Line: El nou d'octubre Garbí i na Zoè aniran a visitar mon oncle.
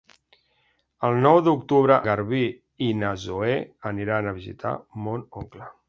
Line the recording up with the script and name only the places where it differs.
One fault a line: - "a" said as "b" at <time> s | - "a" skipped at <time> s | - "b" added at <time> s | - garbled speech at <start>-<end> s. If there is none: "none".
none